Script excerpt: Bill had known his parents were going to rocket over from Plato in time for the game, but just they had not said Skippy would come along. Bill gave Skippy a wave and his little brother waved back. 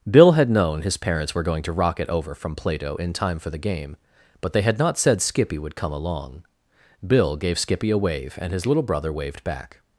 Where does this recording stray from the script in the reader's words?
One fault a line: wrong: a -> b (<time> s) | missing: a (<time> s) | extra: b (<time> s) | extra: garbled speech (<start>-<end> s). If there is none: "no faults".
missing: just (4.5 s)